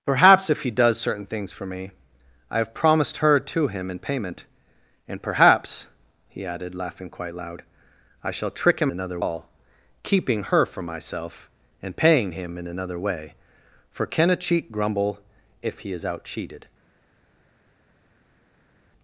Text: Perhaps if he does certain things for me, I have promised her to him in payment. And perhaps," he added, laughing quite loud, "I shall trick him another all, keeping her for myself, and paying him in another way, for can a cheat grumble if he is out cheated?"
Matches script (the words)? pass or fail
pass